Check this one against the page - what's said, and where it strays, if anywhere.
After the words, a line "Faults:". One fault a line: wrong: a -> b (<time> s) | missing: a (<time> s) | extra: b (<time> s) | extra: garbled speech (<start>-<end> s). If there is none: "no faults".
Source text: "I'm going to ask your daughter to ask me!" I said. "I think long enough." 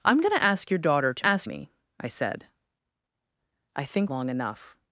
"I'm going to ask your daughter to ask me!" I said. "I think long enough."
Faults:
no faults